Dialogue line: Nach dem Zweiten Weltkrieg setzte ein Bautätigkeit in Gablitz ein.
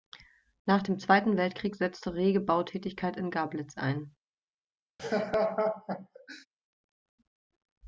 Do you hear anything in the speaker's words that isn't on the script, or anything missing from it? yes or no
yes